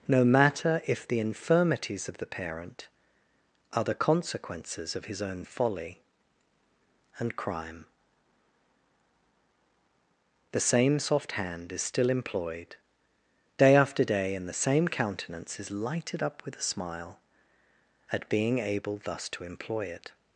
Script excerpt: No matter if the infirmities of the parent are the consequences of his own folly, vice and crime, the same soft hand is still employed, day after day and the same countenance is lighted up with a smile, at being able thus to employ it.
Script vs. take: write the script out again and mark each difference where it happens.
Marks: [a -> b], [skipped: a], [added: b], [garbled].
No matter if the infirmities of the parent are the consequences of his own folly, [skipped: vice] and crime, the same soft hand is still employed, day after day and the same countenance is lighted up with a smile, at being able thus to employ it.